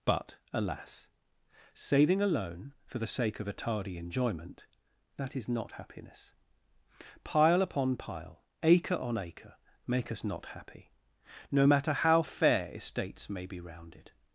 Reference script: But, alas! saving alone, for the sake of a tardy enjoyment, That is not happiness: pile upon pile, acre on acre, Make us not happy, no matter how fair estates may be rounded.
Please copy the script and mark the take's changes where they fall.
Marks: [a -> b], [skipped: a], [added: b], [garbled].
But, alas! saving alone, for the sake of a tardy enjoyment, That is not happiness: pile upon pile, acre on acre, Make us not happy, no matter how fair estates may be rounded.